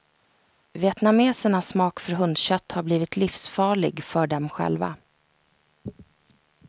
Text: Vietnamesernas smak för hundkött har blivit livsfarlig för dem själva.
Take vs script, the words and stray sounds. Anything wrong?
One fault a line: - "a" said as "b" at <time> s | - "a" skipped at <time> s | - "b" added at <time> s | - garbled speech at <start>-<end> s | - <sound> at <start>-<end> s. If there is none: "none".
none